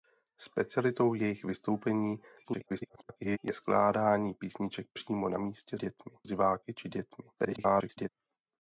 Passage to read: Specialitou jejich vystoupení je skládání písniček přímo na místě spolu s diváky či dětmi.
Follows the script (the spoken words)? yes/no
no